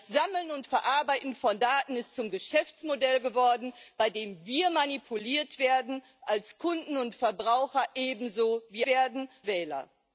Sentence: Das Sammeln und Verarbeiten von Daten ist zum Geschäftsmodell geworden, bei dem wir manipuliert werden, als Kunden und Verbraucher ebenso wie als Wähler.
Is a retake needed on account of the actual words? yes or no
yes